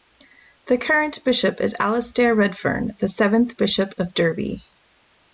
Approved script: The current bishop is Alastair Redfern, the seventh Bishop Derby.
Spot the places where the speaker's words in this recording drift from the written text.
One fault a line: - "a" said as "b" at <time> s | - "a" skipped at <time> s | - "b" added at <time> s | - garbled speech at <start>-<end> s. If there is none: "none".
- "of" added at 4.0 s